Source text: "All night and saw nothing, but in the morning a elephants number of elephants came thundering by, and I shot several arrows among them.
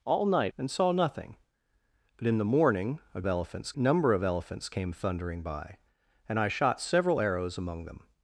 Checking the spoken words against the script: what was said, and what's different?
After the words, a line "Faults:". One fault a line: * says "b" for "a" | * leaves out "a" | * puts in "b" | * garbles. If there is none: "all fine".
"All night and saw nothing, but in the morning a elephants number of elephants came thundering by, and I shot several arrows among them.
Faults:
all fine